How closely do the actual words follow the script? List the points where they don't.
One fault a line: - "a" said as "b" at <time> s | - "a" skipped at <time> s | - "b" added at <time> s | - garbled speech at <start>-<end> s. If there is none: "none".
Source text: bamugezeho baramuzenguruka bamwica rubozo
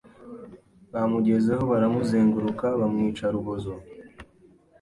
none